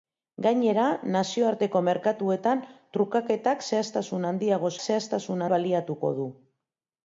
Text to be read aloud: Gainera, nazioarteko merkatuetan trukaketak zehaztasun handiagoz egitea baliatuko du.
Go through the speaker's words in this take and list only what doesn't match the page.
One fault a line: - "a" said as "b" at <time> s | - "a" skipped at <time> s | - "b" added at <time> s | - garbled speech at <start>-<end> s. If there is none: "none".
- "egitea" said as "zehaztasun" at 4.8 s